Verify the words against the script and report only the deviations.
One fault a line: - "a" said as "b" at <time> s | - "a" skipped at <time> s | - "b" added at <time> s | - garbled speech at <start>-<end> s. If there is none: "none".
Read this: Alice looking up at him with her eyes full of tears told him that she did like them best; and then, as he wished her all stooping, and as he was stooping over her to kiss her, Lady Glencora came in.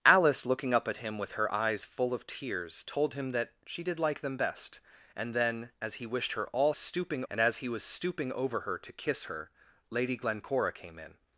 none